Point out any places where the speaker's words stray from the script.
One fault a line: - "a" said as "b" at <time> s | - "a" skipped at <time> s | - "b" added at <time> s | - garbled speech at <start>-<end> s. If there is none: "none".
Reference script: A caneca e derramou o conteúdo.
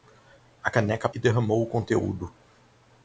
none